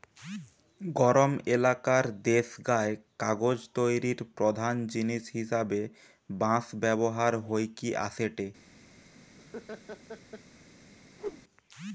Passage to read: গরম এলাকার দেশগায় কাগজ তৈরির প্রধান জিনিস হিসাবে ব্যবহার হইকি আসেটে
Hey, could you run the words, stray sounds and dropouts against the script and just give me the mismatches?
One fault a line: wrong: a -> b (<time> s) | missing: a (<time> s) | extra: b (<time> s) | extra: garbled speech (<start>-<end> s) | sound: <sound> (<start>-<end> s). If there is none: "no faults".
extra: বাঁশ (6.3 s)
sound: laugh (9.4-10.4 s)
sound: whoosh (11.2-11.4 s)